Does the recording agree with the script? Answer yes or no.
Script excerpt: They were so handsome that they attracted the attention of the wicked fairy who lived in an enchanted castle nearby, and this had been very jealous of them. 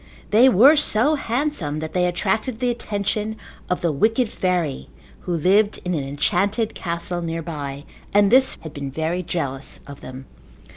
yes